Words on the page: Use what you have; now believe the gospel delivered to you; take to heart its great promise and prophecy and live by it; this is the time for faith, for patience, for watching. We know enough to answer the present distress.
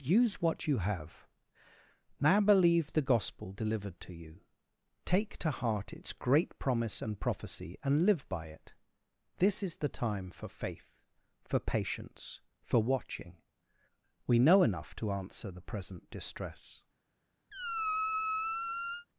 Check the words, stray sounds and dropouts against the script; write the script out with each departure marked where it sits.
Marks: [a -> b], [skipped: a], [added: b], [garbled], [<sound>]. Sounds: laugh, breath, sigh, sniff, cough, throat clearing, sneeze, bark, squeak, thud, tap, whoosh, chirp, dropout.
Use what you have; now believe the gospel delivered to you; take to heart its great promise and prophecy and live by it; this is the time for faith, for patience, for watching. We know enough to answer the present distress. [squeak]